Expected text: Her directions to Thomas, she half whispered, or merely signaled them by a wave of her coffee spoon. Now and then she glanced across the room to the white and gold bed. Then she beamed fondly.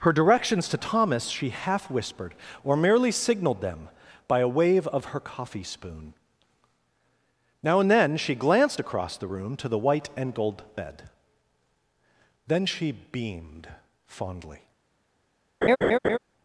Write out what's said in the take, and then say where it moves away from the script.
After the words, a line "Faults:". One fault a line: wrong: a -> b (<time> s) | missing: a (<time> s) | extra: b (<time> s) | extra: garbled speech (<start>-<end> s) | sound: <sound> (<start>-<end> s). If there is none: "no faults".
Her directions to Thomas, she half whispered, or merely signaled them by a wave of her coffee spoon. Now and then she glanced across the room to the white and gold bed. Then she beamed fondly.
Faults:
sound: laugh (15.6-16.2 s)